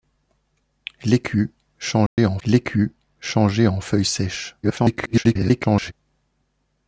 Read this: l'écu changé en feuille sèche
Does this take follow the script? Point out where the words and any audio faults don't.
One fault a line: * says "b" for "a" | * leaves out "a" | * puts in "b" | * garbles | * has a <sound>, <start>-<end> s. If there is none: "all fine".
* has a dropout, 2.1-2.2 s
* puts in "l'écu changé en"
* garbles